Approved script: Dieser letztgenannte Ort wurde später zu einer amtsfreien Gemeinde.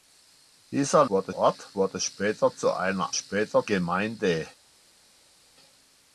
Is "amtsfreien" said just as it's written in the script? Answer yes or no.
no